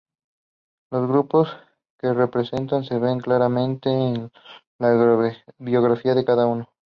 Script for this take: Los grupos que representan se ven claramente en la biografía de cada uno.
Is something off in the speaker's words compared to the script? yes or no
no